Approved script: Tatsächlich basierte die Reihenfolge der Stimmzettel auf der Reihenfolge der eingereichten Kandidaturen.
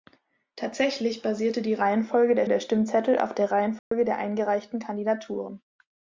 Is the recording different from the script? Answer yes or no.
yes